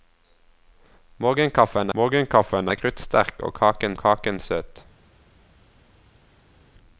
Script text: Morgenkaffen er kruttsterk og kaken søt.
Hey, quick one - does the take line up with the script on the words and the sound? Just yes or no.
no